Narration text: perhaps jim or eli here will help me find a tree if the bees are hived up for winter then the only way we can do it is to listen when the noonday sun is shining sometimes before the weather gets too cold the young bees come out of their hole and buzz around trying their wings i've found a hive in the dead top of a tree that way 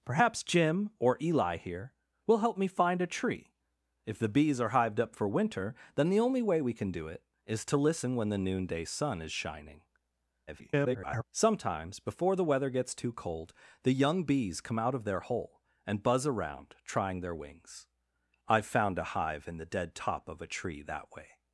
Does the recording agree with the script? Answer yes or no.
no